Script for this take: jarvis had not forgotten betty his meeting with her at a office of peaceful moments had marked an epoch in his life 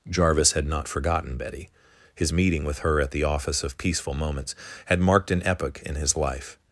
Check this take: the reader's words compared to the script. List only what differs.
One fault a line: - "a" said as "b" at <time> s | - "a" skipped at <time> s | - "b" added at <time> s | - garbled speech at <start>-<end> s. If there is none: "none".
- "a" said as "the" at 3.1 s